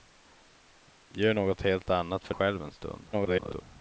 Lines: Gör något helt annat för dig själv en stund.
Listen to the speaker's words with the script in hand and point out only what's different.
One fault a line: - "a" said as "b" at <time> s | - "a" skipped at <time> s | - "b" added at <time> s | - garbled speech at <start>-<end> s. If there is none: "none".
- "dig" skipped at 2.3 s
- garbled speech at 3.1-3.6 s